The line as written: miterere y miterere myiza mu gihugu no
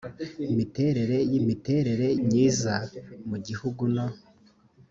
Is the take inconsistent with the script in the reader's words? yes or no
no